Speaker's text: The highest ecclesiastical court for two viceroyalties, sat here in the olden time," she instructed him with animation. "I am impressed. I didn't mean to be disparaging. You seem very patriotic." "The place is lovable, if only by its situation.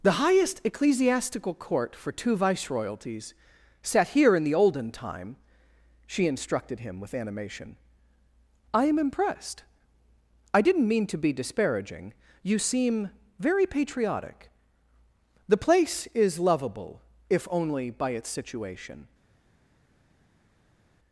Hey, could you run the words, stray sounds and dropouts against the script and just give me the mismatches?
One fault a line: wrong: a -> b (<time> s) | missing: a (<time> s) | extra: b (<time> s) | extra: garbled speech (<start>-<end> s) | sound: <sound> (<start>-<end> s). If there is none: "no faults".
no faults